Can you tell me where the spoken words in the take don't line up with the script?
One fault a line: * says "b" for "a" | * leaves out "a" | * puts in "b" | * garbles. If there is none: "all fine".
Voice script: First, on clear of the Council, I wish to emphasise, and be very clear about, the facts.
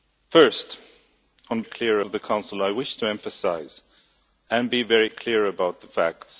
all fine